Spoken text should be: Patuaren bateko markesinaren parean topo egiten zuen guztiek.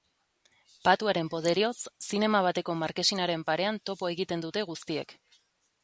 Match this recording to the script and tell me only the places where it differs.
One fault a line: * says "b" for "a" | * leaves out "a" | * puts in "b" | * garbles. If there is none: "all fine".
* puts in "poderioz zinema"
* says "dute" for "zuen"